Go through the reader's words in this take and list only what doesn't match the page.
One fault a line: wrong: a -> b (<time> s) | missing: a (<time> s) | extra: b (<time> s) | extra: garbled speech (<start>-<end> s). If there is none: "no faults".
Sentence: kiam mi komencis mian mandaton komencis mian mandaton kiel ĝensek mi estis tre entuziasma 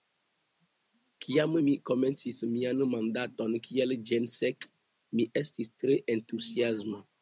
missing: komencis mian mandaton (3.6 s)